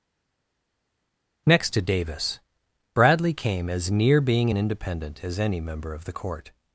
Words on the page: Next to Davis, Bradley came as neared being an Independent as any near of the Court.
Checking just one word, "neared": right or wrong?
wrong